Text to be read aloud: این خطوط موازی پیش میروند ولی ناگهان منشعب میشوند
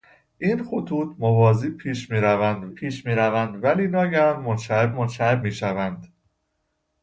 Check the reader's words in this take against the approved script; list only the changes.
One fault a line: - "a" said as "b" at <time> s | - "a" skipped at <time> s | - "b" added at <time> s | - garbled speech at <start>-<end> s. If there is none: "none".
- "پیش میروند" added at 2.7 s
- "منشعب" added at 4.9 s